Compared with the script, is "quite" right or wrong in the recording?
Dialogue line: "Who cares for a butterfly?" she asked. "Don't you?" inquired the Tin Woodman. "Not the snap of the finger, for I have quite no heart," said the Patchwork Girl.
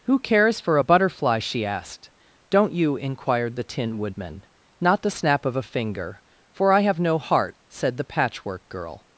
wrong